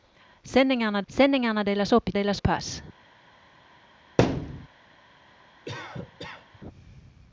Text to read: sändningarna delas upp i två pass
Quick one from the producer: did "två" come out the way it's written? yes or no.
no